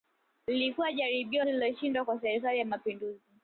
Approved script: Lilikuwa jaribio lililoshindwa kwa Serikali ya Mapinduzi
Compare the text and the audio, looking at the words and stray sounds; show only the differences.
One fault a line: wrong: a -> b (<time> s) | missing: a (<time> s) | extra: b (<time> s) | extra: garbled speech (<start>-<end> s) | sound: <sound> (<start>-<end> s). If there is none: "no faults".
no faults